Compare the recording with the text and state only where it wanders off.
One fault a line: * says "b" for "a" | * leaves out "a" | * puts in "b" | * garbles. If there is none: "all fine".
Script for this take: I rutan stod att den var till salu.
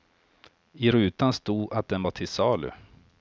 all fine